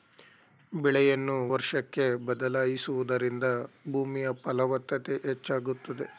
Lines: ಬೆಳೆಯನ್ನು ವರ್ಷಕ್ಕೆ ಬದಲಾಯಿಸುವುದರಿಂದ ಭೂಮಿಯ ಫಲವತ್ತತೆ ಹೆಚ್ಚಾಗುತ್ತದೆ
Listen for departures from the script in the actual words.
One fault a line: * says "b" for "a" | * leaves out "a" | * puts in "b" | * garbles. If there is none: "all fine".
all fine